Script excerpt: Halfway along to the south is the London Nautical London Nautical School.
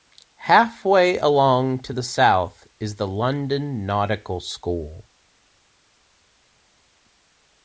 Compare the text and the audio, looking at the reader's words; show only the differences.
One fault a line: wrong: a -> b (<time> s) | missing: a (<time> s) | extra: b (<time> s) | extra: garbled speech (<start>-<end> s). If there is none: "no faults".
missing: London Nautical (4.4 s)